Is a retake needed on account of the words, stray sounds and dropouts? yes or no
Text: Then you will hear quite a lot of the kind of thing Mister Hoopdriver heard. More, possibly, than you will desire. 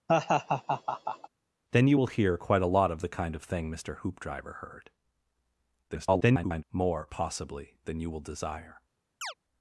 yes